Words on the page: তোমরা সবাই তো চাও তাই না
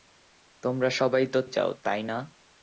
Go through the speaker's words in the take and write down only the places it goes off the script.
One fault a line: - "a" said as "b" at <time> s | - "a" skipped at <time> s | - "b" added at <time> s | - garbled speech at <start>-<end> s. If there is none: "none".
none